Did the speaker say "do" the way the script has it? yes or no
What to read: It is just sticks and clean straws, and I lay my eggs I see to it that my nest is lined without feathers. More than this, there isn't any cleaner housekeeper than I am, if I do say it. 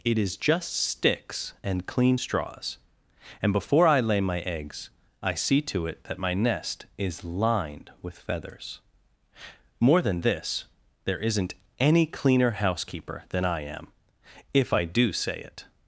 yes